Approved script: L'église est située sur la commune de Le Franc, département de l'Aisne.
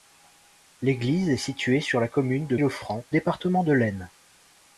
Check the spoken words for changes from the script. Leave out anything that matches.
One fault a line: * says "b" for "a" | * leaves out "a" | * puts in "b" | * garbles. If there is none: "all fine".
all fine